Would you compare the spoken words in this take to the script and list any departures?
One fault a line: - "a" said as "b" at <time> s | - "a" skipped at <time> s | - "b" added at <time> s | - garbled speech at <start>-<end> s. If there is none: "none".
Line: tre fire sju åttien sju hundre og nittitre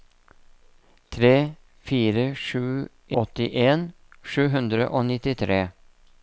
none